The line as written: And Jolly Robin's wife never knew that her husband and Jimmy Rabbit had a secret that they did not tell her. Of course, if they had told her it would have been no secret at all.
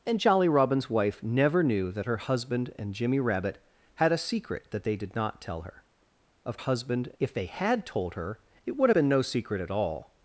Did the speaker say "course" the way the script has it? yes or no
no